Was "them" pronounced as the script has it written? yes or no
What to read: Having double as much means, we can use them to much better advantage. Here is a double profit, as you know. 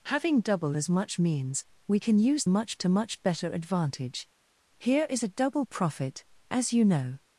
no